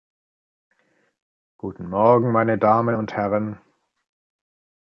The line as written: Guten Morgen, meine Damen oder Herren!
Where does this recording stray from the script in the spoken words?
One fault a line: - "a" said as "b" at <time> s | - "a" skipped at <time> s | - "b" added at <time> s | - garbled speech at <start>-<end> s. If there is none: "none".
- "oder" said as "und" at 2.9 s